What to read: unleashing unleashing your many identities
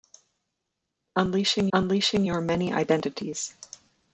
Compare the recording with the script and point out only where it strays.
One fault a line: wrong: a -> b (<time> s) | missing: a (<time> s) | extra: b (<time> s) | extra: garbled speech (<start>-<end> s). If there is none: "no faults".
no faults